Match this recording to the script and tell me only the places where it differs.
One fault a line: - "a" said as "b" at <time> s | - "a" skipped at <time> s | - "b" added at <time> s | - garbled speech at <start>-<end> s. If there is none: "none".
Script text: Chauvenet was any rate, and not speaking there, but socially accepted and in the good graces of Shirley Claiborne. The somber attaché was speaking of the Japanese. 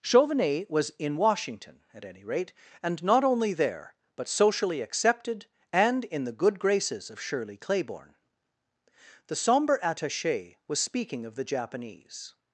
- "in Washington at" added at 1.0 s
- "speaking" said as "only" at 3.2 s